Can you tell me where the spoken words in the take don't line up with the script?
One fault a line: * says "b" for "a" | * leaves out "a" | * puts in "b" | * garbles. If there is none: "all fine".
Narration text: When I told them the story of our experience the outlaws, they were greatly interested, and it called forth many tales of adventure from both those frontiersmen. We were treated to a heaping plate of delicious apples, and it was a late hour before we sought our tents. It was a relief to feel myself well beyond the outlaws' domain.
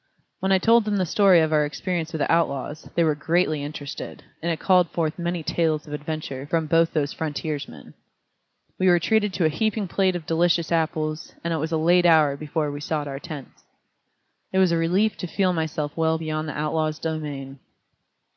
* puts in "with"